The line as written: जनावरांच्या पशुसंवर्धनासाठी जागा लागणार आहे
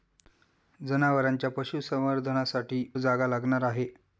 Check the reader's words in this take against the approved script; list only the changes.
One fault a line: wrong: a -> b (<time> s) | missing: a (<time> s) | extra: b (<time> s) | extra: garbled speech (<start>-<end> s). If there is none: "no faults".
no faults